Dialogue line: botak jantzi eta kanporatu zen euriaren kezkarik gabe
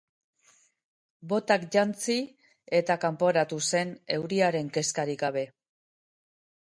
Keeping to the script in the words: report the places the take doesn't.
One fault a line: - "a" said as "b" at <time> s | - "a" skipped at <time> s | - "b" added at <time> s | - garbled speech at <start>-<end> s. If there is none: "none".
none